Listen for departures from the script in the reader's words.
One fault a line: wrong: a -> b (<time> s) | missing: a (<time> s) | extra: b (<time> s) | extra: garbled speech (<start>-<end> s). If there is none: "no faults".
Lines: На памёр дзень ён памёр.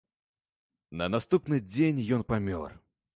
wrong: памёр -> наступны (1.1 s)